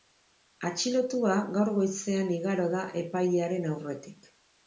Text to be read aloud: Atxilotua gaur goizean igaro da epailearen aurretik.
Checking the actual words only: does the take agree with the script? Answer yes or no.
yes